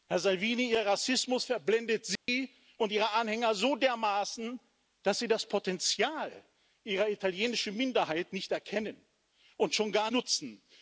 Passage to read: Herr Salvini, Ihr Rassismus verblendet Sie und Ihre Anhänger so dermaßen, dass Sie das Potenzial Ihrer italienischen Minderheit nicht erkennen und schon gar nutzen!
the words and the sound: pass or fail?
fail